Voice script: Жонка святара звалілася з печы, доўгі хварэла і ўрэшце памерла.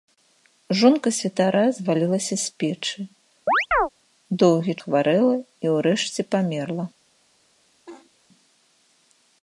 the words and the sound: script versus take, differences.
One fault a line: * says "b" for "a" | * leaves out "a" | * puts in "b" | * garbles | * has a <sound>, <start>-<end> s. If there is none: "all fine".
* has a chirp, 3.5-3.9 s
* has a laugh, 7.9-8.1 s